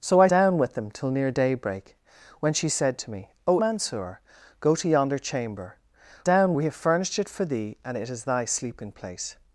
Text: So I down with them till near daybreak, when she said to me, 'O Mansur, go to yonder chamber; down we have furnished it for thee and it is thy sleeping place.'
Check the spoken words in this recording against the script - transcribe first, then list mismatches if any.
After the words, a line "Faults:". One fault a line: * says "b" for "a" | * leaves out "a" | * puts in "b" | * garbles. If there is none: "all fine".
So I down with them till near daybreak, when she said to me, 'O Mansur, go to yonder chamber; down we have furnished it for thee and it is thy sleeping place.'
Faults:
all fine